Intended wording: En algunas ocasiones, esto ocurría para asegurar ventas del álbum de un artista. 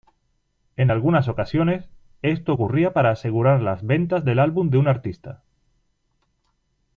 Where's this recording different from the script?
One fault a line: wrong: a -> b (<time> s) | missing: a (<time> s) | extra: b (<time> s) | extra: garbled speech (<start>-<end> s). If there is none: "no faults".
extra: las (3.6 s)